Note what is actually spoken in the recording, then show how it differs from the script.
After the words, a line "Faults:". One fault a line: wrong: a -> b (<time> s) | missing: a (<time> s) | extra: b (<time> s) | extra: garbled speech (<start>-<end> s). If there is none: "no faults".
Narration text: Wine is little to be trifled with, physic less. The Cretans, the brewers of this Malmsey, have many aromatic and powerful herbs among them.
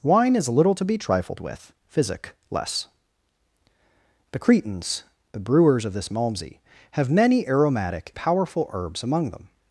Wine is little to be trifled with, physic less. The Cretans, the brewers of this Malmsey, have many aromatic powerful herbs among them.
Faults:
missing: and (8.1 s)